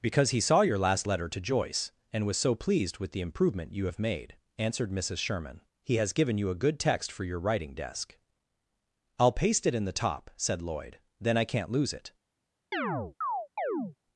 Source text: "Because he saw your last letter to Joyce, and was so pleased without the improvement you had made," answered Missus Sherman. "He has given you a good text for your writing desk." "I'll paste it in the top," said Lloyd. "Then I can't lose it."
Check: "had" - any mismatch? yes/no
yes